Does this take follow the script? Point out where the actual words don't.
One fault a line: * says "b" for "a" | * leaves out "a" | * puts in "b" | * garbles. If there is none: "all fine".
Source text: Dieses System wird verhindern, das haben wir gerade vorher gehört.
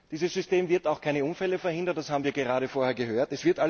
* puts in "auch keine Unfälle"